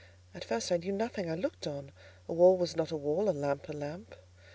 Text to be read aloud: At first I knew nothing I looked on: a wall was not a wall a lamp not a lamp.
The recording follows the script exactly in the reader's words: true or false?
false